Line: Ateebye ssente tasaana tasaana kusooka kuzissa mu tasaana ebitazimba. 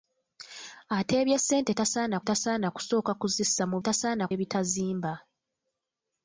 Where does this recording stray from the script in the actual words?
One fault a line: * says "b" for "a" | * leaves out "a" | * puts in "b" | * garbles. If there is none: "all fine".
all fine